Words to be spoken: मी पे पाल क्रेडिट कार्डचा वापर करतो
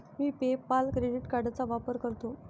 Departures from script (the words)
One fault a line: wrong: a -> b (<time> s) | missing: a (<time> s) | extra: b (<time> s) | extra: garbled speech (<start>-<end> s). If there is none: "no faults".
no faults